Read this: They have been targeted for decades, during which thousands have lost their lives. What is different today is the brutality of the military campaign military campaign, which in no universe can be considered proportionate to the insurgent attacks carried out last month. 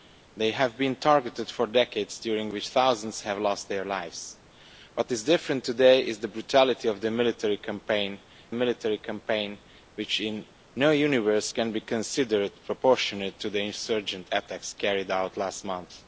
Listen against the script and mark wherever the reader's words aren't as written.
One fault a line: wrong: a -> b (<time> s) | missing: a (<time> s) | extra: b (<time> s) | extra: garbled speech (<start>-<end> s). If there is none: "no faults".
no faults